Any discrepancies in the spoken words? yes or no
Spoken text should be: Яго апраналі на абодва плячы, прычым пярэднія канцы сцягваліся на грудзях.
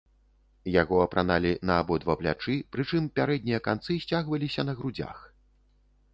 no